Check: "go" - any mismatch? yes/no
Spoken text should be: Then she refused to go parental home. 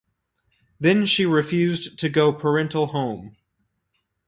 no